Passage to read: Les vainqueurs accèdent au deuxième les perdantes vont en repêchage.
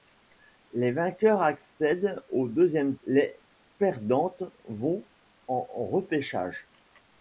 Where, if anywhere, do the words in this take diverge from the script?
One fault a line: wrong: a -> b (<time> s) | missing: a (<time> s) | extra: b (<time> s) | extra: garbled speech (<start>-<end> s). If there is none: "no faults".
no faults